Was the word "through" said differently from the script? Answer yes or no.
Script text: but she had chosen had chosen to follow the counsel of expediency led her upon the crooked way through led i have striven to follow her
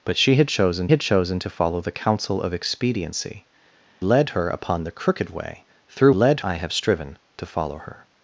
no